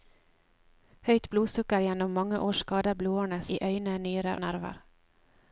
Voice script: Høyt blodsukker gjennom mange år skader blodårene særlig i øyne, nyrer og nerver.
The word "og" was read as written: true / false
false